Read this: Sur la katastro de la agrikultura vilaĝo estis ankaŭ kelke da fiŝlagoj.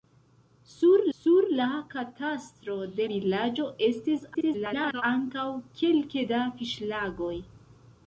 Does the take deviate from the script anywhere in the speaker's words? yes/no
yes